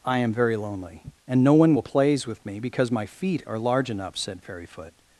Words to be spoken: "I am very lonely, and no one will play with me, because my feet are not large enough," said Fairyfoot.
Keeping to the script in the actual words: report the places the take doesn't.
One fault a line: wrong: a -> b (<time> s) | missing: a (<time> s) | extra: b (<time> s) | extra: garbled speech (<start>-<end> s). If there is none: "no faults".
wrong: play -> plays (1.8 s)
missing: not (3.6 s)